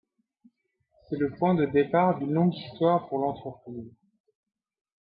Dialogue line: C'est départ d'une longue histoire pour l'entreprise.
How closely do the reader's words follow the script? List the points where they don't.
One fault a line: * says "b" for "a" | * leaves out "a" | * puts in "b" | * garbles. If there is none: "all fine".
* puts in "le point de"